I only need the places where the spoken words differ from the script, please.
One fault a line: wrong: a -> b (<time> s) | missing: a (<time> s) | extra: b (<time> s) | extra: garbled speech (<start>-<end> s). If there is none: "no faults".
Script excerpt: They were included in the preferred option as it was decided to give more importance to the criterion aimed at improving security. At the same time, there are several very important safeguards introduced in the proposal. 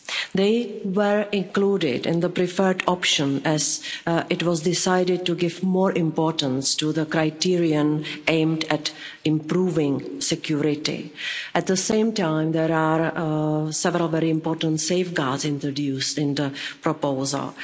no faults